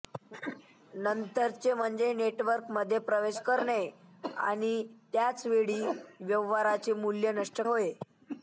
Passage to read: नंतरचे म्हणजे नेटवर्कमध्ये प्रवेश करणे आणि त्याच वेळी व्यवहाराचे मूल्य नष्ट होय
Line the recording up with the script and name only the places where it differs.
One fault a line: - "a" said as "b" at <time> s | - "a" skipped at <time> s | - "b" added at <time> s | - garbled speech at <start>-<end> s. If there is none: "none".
none